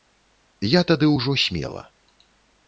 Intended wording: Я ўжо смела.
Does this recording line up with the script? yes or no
no